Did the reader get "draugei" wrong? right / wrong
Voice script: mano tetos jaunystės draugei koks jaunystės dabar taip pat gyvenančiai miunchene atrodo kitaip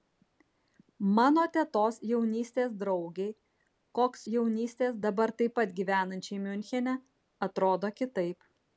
right